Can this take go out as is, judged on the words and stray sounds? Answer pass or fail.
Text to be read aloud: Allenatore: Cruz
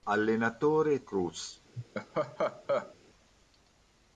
fail